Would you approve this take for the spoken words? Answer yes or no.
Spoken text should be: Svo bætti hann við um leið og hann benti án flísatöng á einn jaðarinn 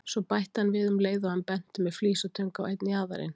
no